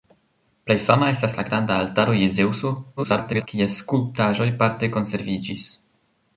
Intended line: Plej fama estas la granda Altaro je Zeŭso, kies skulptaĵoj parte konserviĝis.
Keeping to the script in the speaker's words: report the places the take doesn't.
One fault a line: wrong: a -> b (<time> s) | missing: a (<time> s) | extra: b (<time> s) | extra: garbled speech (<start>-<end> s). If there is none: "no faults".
extra: garbled speech (3.0-3.5 s)